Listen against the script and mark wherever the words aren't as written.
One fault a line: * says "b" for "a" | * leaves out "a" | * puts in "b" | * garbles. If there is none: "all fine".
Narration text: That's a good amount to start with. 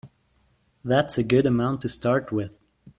all fine